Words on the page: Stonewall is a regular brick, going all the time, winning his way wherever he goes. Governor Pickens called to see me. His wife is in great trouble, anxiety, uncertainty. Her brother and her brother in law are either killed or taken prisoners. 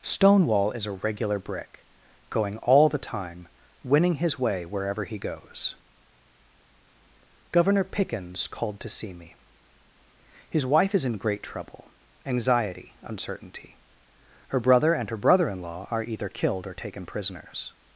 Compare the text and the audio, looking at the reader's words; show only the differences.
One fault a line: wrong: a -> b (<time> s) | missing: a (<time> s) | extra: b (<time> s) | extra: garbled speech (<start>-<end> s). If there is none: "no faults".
no faults